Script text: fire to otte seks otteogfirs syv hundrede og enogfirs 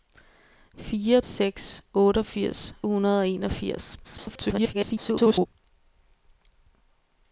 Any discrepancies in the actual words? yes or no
yes